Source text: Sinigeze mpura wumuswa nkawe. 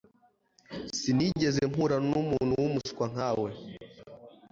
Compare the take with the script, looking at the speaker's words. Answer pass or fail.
fail